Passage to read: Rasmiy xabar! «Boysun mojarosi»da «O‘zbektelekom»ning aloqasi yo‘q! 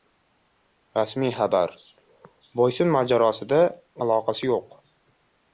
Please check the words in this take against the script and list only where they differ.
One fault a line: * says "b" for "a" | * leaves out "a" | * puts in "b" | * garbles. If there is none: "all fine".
* leaves out "O‘zbektelekom»ning"